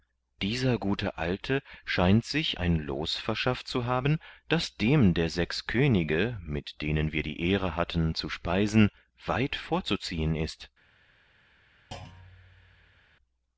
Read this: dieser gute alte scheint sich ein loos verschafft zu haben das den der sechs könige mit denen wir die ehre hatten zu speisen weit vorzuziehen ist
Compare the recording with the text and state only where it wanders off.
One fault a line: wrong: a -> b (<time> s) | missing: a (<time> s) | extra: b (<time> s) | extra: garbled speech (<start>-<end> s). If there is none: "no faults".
wrong: den -> dem (4.8 s)